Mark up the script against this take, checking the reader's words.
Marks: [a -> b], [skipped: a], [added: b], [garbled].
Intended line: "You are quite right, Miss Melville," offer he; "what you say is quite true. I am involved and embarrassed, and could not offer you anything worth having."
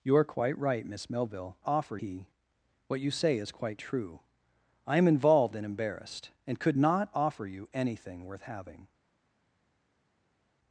"You are quite right, Miss Melville," offer he; "what you say is quite true. I am involved and embarrassed, and could not offer you anything worth having."